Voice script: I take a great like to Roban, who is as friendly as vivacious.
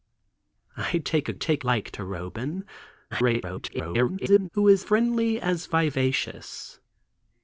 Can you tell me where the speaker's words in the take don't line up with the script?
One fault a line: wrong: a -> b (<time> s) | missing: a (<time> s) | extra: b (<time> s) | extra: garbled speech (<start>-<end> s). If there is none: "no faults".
wrong: great -> take (1.3 s)
extra: garbled speech (3.1-4.5 s)
missing: as (4.8 s)